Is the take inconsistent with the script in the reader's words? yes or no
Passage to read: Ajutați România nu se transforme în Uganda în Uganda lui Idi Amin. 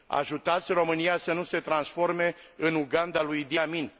yes